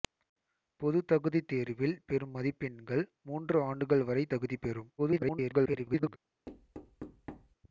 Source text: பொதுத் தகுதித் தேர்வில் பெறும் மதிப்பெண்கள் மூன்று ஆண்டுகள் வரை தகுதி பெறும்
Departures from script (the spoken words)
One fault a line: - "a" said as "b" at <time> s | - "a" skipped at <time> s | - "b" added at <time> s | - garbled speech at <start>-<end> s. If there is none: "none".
- garbled speech at 5.0-6.2 s